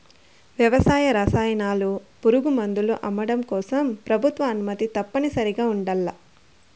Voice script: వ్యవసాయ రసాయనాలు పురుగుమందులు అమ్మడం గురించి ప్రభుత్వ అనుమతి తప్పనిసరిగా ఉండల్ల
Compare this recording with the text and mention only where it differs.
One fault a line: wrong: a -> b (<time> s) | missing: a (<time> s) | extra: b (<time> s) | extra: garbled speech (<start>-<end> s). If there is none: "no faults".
wrong: గురించి -> కోసం (3.5 s)